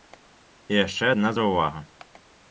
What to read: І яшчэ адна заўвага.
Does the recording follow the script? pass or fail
pass